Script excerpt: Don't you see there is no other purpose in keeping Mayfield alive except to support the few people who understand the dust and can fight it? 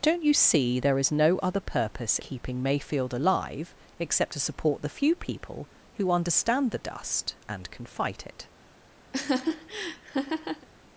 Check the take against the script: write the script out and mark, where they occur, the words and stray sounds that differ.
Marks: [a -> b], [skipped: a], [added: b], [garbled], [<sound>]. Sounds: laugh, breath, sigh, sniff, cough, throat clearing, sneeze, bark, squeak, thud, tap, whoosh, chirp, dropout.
Don't you see there is no other purpose [skipped: in] keeping Mayfield alive except to support the few people who understand the dust and can fight it? [laugh]